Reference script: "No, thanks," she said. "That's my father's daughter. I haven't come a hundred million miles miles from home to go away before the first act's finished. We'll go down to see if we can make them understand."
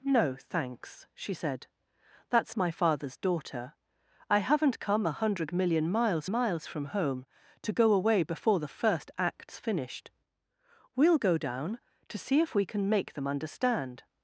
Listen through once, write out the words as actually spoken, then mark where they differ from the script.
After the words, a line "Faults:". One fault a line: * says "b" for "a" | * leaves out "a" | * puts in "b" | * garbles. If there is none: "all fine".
"No, thanks," she said. "That's my father's daughter. I haven't come a hundred million miles miles from home to go away before the first act's finished. We'll go down to see if we can make them understand."
Faults:
all fine